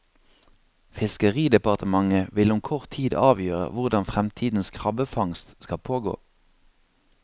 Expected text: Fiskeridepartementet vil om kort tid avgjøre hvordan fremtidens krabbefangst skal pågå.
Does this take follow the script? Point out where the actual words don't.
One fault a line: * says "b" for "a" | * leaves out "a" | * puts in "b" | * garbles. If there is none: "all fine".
all fine